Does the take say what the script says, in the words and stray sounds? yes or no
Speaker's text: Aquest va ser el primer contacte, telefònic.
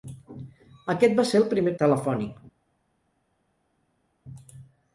no